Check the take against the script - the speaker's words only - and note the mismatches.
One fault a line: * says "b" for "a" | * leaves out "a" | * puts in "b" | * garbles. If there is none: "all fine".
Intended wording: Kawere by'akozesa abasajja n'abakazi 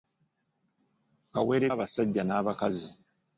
* leaves out "by'akozesa"